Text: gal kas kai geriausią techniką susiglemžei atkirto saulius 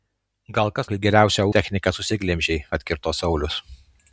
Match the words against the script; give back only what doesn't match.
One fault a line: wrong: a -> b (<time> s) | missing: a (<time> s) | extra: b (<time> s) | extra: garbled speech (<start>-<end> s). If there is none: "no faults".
no faults